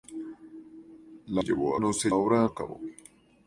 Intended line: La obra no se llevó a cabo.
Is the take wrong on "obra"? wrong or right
wrong